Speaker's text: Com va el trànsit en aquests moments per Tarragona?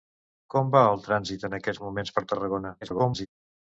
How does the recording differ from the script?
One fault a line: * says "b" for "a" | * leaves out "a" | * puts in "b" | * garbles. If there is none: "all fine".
* garbles